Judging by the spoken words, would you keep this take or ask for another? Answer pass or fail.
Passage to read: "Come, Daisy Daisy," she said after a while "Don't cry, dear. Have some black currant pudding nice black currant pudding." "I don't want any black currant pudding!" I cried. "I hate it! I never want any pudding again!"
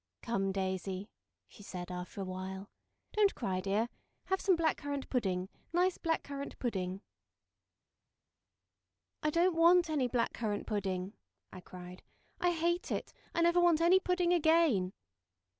fail